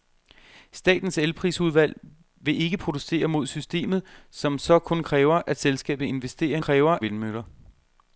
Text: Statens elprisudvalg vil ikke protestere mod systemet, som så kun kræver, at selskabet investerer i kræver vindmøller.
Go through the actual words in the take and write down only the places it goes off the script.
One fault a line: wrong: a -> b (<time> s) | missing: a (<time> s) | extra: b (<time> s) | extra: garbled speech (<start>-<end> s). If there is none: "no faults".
no faults